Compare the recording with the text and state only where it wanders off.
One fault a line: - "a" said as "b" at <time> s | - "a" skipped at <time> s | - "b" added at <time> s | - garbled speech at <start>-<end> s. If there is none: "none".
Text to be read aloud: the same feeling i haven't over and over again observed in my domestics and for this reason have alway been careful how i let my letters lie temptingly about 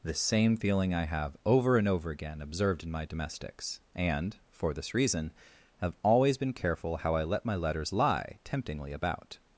- "haven't" said as "have" at 1.1 s
- "alway" said as "always" at 6.0 s